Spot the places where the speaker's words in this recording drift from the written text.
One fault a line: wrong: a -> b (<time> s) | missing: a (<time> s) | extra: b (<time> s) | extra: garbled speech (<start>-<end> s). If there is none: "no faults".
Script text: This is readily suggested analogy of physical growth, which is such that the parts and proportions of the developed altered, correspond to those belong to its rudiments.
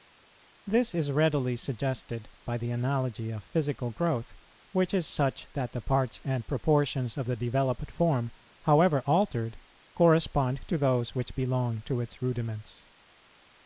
extra: by the (2.4 s)
extra: form however (7.9 s)
extra: which (11.1 s)